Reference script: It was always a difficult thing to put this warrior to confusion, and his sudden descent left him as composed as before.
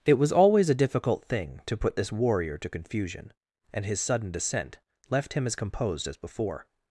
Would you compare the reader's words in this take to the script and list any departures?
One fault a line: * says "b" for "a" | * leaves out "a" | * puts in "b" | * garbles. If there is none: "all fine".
all fine